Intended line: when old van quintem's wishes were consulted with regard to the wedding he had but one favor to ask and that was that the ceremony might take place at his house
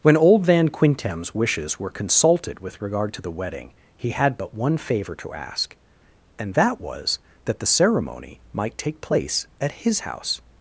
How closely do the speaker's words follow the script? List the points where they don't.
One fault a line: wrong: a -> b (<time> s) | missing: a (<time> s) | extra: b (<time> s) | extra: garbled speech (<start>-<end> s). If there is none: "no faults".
no faults